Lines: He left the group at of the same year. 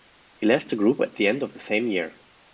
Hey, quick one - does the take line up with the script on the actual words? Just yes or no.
no